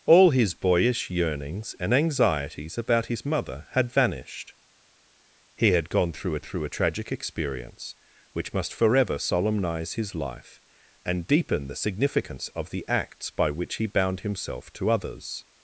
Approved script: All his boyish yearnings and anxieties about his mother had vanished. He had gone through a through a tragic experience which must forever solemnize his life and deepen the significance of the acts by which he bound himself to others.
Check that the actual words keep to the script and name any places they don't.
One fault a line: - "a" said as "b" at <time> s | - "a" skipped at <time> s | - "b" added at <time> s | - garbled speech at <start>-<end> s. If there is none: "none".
none